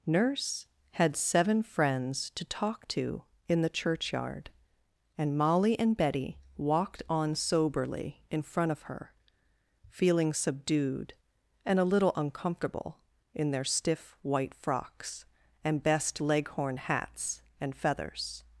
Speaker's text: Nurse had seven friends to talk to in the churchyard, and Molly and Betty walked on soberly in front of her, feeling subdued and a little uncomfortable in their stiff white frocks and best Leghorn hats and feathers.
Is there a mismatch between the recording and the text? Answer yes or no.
no